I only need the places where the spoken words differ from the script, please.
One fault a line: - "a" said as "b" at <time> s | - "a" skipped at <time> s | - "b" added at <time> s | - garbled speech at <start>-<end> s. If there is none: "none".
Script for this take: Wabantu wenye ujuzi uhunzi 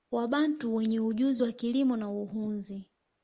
- "wa kilimo na" added at 1.4 s